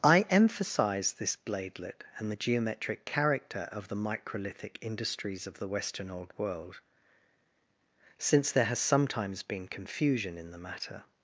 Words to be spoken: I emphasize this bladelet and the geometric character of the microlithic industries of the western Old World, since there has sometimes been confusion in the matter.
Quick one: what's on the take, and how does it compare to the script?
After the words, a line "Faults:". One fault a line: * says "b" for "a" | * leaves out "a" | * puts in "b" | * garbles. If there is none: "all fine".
I emphasize this bladelet and the geometric character of the microlithic industries of the western Old World, since there has sometimes been confusion in the matter.
Faults:
all fine